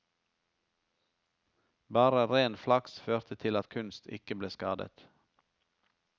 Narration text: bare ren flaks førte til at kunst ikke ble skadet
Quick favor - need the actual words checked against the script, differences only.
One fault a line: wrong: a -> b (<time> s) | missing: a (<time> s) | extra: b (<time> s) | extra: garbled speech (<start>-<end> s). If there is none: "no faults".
no faults